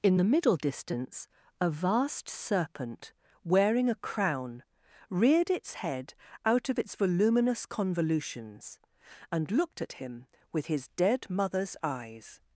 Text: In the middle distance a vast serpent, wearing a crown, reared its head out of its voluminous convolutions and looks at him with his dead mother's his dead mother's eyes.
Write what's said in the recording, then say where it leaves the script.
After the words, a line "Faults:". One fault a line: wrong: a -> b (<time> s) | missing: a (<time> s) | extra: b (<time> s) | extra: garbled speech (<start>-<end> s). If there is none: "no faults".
In the middle distance a vast serpent, wearing a crown, reared its head out of its voluminous convolutions and looked at him with his dead mother's eyes.
Faults:
wrong: looks -> looked (9.5 s)
missing: his dead mother's (11.8 s)